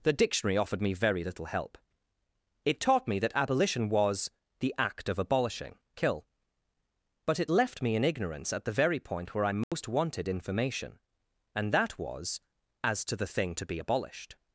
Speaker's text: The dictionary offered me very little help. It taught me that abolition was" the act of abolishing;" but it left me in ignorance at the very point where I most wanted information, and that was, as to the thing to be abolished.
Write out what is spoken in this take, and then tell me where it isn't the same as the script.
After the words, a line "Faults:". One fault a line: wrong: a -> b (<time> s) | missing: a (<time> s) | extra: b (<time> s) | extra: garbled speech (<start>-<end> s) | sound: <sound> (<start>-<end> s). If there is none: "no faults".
The dictionary offered me very little help. It taught me that abolition was" the act of abolishing;" kill but it left me in ignorance at the very point where I most wanted information, and that was, as to the thing to be abolished.
Faults:
extra: kill (6.0 s)
sound: dropout (9.6-9.7 s)